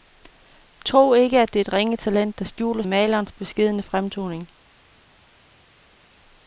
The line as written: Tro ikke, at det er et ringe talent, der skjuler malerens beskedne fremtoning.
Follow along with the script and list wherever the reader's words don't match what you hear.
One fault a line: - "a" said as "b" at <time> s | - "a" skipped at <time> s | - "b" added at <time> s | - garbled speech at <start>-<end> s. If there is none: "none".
none